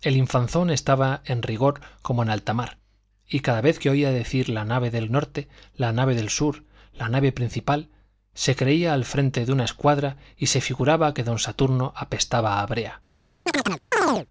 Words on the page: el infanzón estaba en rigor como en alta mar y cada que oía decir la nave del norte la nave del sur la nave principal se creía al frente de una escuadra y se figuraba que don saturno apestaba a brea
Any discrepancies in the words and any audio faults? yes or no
yes